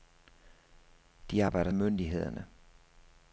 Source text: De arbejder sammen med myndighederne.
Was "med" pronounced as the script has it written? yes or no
no